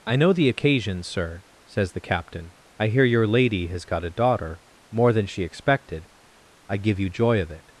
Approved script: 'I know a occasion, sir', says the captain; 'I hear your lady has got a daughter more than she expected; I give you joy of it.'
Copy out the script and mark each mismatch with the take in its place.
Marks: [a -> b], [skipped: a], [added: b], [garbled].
'I know [a -> the] occasion, sir', says the captain; 'I hear your lady has got a daughter more than she expected; I give you joy of it.'